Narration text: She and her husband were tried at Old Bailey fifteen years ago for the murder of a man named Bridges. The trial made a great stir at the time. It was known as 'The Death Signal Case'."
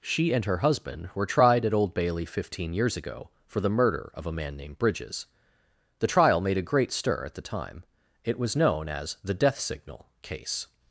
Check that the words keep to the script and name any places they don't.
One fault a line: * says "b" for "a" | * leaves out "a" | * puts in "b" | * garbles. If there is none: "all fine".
all fine